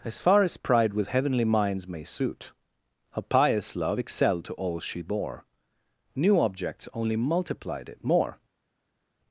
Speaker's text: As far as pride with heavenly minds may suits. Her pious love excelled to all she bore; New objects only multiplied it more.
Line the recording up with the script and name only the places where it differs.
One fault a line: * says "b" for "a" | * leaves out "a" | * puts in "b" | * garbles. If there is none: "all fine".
* says "suit" for "suits"